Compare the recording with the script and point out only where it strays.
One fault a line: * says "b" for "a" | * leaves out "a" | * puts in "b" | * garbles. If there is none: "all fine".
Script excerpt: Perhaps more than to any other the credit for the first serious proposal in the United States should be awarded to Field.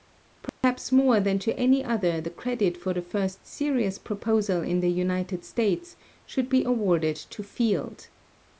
all fine